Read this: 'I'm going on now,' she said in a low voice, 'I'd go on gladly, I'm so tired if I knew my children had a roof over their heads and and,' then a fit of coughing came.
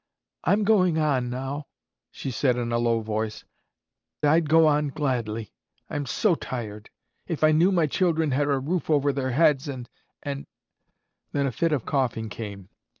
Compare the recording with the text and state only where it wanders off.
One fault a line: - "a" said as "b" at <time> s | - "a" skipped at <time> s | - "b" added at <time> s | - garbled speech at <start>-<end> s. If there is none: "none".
none